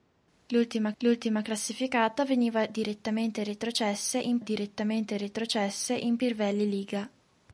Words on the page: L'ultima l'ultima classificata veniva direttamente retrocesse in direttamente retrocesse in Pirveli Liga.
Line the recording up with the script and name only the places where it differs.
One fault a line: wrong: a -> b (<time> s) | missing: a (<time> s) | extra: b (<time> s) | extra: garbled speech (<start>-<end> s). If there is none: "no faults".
no faults